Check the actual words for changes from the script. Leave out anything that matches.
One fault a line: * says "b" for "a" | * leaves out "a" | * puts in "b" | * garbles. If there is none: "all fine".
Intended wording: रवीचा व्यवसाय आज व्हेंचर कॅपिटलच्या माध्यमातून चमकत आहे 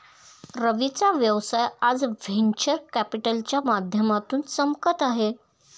all fine